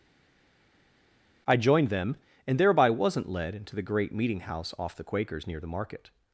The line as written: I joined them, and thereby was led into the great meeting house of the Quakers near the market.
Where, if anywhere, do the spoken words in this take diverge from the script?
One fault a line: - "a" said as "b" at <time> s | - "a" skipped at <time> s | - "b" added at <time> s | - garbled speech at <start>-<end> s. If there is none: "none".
- "was" said as "wasn't" at 2.9 s
- "of" said as "off" at 4.8 s